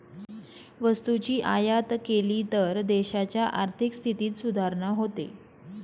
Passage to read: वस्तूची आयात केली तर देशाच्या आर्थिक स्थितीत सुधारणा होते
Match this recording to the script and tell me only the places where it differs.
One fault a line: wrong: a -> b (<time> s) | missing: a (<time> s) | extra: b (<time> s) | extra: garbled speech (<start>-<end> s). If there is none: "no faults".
no faults